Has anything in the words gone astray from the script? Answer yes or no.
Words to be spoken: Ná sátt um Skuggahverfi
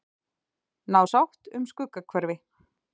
no